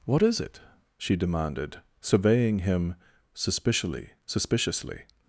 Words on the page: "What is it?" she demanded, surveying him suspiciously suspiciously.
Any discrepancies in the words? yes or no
no